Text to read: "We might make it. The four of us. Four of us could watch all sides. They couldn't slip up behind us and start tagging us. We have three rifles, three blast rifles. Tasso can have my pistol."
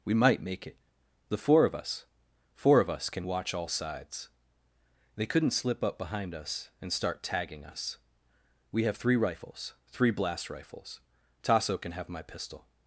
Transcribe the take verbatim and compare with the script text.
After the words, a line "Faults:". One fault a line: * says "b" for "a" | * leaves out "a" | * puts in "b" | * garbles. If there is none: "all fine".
"We might make it. The four of us. Four of us can watch all sides. They couldn't slip up behind us and start tagging us. We have three rifles, three blast rifles. Tasso can have my pistol."
Faults:
* says "can" for "could"